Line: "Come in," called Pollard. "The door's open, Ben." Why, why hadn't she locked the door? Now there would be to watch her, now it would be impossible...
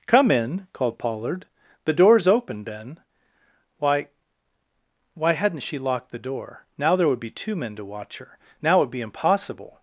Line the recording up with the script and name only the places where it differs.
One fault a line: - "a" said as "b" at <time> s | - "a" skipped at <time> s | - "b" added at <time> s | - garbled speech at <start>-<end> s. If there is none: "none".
- "two men" added at 7.3 s